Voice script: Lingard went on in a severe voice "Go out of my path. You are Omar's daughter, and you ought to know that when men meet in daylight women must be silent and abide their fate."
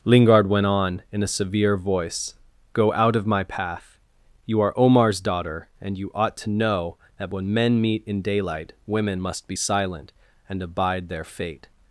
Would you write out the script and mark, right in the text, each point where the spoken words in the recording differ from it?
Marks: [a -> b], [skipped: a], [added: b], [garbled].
Lingard went on in a severe voice "Go out of my path. You are Omar's daughter, and you ought to know that when men meet in daylight women must be silent and abide their fate."